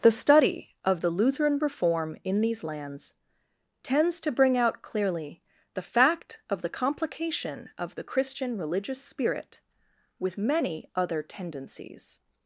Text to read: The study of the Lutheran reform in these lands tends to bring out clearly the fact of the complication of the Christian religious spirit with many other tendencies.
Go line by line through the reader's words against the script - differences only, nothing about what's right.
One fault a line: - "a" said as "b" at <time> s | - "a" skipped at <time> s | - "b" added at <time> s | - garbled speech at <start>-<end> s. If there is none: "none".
none